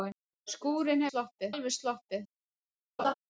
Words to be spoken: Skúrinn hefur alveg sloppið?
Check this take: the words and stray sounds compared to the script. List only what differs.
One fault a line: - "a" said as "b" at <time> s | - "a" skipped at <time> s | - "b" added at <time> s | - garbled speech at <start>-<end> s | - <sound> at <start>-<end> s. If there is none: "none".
- "hefur" said as "sloppið" at 1.1 s
- laugh at 3.0-3.1 s